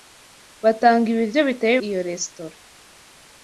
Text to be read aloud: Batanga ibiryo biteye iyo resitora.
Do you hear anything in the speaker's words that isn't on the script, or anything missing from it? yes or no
no